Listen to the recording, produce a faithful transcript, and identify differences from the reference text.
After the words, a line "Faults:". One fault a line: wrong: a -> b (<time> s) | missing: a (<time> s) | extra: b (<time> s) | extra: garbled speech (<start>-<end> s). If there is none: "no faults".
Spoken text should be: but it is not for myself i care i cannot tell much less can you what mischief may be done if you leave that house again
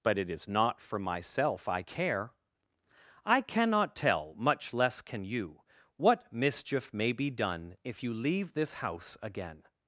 but it is not for myself i care i cannot tell much less can you what mischief may be done if you leave this house again
Faults:
wrong: that -> this (8.5 s)